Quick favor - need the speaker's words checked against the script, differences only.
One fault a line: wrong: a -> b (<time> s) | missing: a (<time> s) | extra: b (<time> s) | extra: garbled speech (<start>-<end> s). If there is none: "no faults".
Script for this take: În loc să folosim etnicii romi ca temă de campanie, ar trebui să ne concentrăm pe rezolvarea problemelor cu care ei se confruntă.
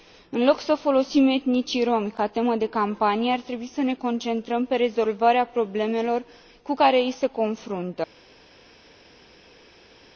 no faults